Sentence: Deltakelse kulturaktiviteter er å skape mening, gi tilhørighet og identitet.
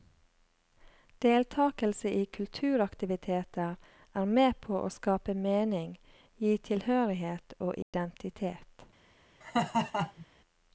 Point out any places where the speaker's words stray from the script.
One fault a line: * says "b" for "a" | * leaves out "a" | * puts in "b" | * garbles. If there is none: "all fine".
* puts in "i"
* puts in "med på"